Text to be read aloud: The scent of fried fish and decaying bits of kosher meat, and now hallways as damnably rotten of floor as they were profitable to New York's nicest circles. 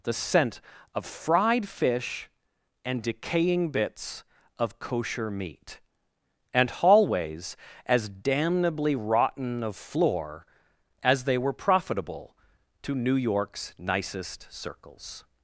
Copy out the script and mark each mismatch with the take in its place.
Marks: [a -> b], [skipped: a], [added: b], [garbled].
The scent of fried fish and decaying bits of kosher meat, and [skipped: now] hallways as damnably rotten of floor as they were profitable to New York's nicest circles.